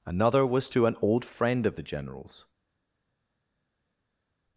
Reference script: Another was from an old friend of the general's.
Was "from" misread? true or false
true